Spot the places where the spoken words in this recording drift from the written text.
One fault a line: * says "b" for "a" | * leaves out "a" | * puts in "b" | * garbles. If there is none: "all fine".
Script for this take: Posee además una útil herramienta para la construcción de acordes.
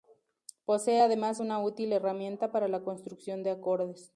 all fine